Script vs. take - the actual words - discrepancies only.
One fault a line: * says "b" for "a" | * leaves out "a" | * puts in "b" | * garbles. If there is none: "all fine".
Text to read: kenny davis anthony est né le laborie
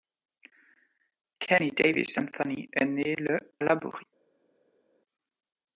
all fine